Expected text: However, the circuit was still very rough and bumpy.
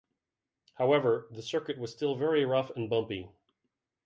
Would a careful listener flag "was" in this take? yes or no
no